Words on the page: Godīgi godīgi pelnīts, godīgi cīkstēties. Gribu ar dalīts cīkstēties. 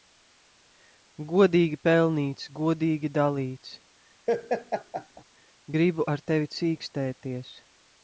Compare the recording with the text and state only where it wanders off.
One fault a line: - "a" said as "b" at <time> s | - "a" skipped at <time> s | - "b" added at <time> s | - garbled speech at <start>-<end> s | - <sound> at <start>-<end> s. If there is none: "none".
- "godīgi" skipped at 1.8 s
- "cīkstēties" said as "dalīts" at 3.2 s
- laugh at 4.3-5.2 s
- "dalīts" said as "tevi" at 6.3 s